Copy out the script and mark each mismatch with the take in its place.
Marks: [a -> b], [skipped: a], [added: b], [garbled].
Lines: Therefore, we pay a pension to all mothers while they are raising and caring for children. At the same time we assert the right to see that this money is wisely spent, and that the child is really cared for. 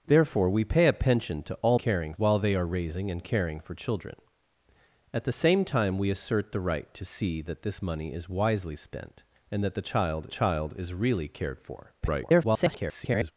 Therefore, we pay a pension to all [mothers -> caring] while they are raising and caring for children. At the same time we assert the right to see that this money is wisely spent, and that the child [added: child] is really cared for. [garbled]